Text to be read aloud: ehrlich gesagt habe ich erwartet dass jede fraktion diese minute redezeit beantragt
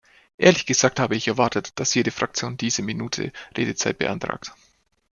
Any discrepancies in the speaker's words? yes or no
no